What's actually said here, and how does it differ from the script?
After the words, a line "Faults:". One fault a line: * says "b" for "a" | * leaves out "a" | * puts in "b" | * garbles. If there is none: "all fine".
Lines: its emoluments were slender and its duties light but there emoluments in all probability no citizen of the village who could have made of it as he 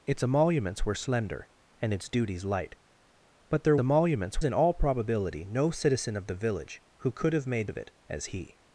its emoluments were slender and its duties light but there emoluments in all probability no citizen of the village who could have made of it as he
Faults:
all fine